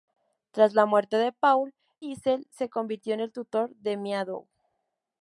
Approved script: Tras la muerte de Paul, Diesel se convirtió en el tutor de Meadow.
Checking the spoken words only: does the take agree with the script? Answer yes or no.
yes